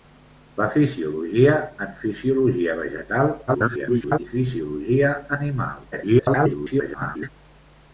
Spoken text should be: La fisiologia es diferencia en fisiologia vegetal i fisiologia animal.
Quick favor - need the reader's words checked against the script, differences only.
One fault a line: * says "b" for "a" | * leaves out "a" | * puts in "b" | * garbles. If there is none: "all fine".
* leaves out "es diferencia"
* garbles
* garbles